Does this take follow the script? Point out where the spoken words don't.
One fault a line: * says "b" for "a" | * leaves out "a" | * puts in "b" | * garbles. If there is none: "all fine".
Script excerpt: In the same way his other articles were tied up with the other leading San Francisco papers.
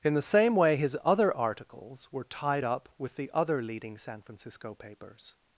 all fine